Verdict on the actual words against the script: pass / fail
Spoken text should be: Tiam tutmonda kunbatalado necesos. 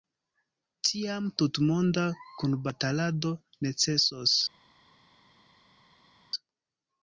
pass